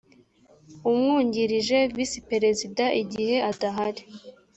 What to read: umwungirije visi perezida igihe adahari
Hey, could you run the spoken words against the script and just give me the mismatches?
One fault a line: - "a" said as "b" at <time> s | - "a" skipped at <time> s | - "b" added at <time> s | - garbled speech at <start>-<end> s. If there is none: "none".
none